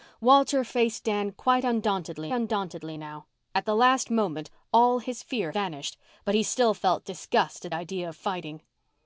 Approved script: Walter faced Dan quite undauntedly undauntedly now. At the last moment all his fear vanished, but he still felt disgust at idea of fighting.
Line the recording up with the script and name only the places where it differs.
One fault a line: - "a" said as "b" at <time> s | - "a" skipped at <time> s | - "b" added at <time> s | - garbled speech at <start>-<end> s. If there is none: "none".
none